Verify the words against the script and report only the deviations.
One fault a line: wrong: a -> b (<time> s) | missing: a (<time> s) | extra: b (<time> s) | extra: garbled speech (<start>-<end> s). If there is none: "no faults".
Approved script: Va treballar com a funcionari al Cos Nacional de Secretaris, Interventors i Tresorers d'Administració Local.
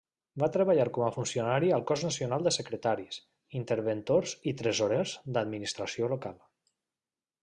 no faults